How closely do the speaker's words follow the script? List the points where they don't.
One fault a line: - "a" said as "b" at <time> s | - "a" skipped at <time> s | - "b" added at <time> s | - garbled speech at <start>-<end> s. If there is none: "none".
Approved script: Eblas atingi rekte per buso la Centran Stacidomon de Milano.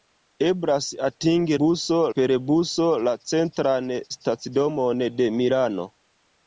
- "rekte" said as "buso" at 1.6 s